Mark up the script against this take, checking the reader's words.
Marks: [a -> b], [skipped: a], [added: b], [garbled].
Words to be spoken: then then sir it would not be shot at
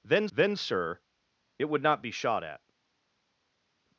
then then sir it would not be shot at